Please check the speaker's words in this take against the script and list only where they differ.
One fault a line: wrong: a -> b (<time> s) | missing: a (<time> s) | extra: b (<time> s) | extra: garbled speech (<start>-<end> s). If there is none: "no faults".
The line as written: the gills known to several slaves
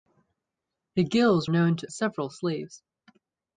no faults